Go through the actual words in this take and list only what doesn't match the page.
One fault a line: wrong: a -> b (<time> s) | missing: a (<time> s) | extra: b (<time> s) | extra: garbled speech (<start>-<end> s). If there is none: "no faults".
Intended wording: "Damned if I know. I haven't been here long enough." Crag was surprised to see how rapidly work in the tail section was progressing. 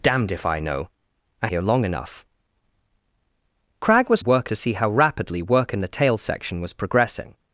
missing: haven't been (1.5 s)
wrong: surprised -> work (4.2 s)